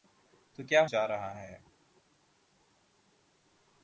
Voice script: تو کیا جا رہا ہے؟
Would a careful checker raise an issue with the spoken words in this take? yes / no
no